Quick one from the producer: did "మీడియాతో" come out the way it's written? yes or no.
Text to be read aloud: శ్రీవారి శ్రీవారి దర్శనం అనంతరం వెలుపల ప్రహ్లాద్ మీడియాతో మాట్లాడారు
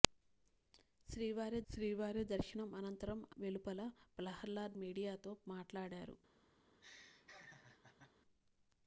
yes